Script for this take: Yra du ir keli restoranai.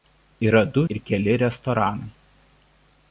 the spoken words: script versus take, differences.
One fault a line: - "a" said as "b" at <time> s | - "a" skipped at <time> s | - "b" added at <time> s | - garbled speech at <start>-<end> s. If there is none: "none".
none